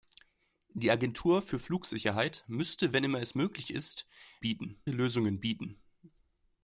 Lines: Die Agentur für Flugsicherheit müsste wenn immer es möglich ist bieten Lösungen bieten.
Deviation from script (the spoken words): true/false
false